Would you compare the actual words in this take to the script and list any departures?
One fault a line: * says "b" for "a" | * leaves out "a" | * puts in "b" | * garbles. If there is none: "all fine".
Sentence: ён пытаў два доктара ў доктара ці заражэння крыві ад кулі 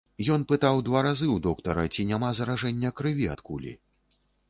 * says "разы" for "доктара"
* puts in "няма"